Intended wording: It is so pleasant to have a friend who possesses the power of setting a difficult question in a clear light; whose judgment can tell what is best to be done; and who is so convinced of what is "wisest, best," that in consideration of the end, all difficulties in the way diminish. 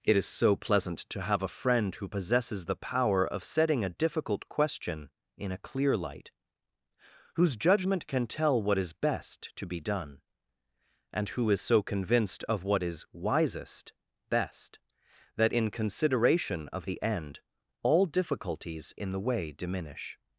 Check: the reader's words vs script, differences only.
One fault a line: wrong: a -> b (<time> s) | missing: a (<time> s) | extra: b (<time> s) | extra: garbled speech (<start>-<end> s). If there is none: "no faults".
no faults